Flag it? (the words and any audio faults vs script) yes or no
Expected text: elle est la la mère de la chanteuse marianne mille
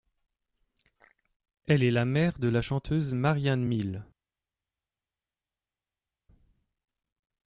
yes